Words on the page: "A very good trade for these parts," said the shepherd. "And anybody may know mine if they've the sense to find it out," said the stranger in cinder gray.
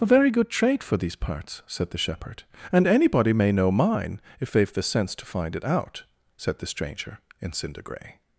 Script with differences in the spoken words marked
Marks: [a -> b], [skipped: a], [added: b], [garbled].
"A very good trade for these parts," said the shepherd. "And anybody may know mine if they've the sense to find it out," said the stranger in cinder gray.